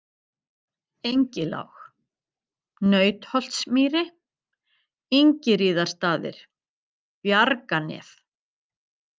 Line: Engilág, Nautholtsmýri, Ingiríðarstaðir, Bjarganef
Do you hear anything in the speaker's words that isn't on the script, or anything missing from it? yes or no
no